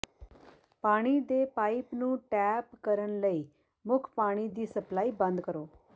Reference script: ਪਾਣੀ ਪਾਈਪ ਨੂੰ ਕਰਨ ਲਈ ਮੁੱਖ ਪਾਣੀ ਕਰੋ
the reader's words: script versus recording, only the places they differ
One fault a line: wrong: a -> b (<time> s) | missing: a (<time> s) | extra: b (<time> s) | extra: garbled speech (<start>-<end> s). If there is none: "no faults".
extra: ਦੇ (1.2 s)
extra: ਟੈਪ (2.3 s)
extra: ਦੀ ਸਪਲਾਈ ਬੰਦ (4.5 s)